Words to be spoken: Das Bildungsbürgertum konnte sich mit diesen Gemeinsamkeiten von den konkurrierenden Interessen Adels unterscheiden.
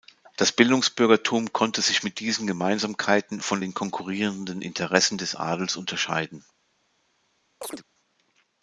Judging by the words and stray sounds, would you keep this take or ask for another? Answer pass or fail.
fail